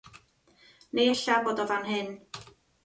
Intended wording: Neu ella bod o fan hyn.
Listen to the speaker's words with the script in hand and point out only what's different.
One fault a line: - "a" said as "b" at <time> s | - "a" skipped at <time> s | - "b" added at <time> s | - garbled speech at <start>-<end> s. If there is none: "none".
none